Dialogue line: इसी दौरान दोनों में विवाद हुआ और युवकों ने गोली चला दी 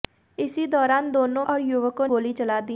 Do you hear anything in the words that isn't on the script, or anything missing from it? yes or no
yes